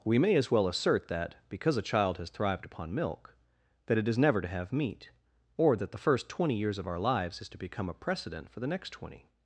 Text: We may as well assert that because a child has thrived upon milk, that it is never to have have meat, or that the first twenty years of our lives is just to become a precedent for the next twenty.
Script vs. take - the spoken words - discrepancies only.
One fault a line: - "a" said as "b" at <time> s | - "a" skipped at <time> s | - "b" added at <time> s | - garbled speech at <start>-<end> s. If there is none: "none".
- "have" skipped at 4.7 s
- "just" skipped at 7.5 s